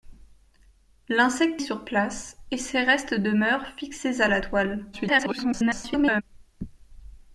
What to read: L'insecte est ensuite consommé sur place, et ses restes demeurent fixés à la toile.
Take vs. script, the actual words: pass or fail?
fail